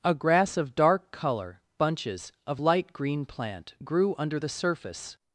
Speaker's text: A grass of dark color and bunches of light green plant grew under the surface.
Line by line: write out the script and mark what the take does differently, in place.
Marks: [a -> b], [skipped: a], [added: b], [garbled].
A grass of dark color [skipped: and] bunches of light green plant grew under the surface.